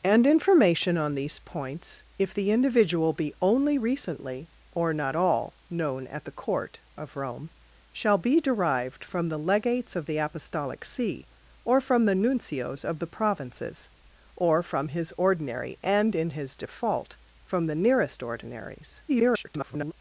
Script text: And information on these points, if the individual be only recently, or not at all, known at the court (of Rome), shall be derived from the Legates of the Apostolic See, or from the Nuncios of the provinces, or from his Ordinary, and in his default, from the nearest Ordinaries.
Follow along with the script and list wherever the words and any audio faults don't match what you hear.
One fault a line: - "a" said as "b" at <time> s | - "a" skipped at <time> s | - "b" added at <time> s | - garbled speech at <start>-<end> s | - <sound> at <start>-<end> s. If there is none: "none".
- "at" skipped at 5.2 s
- garbled speech at 19.1-19.9 s